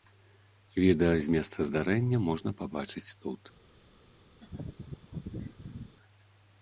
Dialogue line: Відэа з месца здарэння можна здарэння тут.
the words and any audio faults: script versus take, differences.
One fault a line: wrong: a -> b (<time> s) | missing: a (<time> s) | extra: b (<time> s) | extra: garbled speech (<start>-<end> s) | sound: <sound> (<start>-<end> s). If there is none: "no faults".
wrong: здарэння -> пабачыць (2.6 s)
sound: laugh (4.4-5.9 s)